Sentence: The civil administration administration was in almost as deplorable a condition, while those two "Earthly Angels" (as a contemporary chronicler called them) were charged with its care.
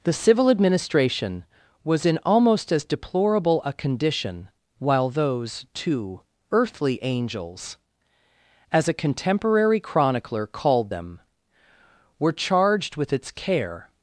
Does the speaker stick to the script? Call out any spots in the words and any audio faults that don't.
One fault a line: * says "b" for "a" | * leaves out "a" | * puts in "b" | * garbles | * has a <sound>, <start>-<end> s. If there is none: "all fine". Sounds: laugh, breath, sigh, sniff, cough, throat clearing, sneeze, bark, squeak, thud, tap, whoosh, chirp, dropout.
* leaves out "administration"